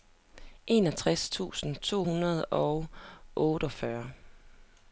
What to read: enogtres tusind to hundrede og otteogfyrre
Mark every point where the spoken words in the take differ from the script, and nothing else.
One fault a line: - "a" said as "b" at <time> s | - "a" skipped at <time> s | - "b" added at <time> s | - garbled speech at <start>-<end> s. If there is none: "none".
none